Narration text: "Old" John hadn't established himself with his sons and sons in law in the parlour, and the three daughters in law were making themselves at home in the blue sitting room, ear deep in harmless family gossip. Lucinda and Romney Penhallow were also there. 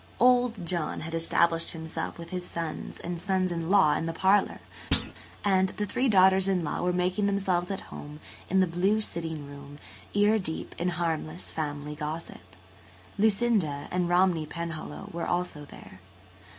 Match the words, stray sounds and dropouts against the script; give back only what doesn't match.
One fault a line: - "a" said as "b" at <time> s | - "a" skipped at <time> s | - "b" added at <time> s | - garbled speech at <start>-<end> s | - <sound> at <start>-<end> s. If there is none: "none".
- "hadn't" said as "had" at 1.0 s
- thud at 4.9-5.1 s